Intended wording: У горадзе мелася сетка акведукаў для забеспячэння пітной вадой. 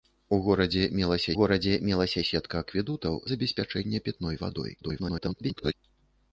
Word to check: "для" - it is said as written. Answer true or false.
false